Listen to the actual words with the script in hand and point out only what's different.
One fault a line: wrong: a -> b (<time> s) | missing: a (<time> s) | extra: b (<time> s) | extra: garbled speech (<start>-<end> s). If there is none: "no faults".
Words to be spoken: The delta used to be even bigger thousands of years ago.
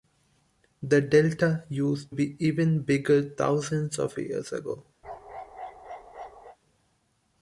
missing: to (2.1 s)